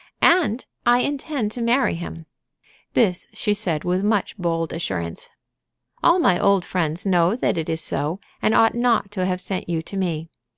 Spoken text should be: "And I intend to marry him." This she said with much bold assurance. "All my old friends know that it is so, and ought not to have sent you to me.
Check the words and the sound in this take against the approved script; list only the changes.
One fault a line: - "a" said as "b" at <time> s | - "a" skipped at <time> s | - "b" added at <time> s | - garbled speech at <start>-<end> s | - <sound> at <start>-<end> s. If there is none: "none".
none